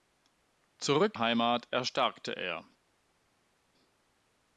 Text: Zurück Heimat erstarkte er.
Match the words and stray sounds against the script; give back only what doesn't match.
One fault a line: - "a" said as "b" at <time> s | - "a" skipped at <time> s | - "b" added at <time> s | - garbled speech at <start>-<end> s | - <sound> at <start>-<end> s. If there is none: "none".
none